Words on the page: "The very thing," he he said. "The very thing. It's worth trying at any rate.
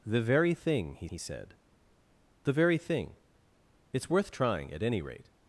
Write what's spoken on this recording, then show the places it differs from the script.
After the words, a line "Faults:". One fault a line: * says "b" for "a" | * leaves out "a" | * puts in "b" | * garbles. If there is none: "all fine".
"The very thing," he he said. "The very thing. It's worth trying at any rate.
Faults:
all fine